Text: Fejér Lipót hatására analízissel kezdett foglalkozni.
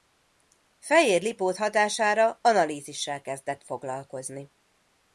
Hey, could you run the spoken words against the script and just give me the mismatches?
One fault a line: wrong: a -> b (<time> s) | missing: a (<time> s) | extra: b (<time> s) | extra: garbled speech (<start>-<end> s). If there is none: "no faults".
no faults